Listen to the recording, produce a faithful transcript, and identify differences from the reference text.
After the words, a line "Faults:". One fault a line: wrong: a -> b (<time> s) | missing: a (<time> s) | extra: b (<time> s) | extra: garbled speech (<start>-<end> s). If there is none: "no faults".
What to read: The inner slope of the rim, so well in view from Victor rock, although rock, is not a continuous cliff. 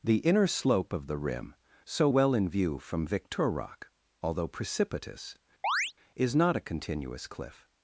The inner slope of the rim, so well in view from Victor rock, although precipitous, is not a continuous cliff.
Faults:
wrong: rock -> precipitous (4.5 s)